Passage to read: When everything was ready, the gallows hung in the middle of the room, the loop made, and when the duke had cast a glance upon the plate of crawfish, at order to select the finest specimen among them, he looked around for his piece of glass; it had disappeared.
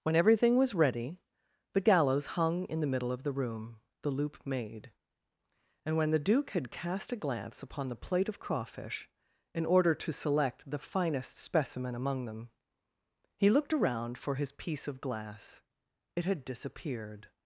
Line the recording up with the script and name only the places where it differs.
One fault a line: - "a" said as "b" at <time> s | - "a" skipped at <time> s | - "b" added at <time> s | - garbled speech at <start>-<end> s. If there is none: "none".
- "at" said as "in" at 9.5 s